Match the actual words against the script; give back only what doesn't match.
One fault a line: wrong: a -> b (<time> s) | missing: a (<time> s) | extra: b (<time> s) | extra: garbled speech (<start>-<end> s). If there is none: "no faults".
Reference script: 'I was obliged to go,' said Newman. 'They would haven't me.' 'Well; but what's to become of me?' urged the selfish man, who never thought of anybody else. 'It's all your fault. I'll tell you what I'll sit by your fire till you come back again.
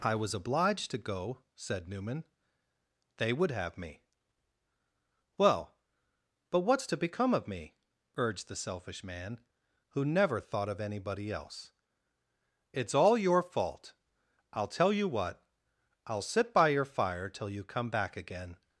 wrong: haven't -> have (3.5 s)